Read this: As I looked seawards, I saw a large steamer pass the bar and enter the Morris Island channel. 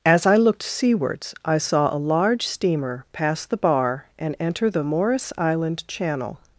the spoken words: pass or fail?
pass